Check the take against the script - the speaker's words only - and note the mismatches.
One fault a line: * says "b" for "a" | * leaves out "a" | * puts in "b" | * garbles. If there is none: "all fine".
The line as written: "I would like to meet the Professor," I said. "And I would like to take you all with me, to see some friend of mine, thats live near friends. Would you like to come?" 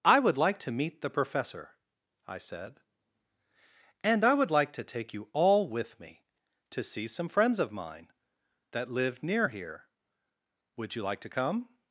* says "friends" for "friend"
* says "that" for "thats"
* says "here" for "friends"